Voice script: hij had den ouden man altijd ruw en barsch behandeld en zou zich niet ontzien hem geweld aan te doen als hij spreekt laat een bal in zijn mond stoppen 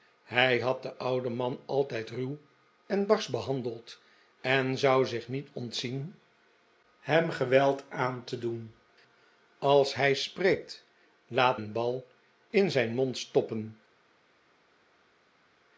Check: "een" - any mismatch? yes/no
no